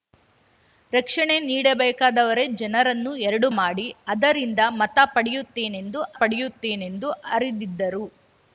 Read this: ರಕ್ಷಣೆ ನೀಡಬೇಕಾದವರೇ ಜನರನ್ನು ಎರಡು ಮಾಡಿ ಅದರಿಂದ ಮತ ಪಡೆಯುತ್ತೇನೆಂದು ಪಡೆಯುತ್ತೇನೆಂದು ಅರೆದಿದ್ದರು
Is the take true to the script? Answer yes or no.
yes